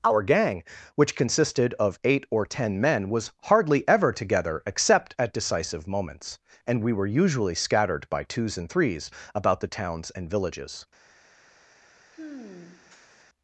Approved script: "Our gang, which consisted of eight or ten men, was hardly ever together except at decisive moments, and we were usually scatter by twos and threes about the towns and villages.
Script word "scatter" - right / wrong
wrong